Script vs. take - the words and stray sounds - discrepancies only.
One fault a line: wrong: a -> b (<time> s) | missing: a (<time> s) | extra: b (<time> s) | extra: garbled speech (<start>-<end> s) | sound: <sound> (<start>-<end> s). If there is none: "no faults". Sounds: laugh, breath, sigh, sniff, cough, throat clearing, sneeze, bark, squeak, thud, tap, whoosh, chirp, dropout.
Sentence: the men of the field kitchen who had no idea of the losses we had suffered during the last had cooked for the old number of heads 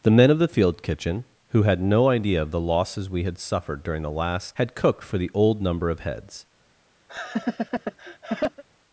sound: laugh (7.1-8.6 s)